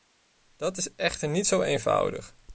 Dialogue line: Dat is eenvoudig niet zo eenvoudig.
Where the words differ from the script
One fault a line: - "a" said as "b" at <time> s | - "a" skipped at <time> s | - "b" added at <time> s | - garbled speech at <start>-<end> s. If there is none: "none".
- "eenvoudig" said as "echter" at 0.9 s